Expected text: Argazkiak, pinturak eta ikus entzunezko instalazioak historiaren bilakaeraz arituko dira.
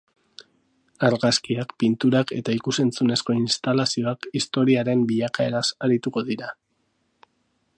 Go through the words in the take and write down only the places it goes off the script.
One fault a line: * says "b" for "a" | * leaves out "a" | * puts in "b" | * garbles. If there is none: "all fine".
all fine